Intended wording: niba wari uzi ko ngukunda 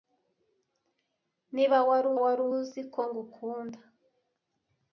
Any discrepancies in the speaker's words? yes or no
yes